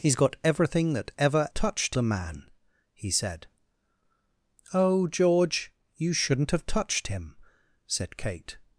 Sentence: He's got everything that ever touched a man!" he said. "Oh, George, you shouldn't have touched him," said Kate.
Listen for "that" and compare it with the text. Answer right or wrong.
right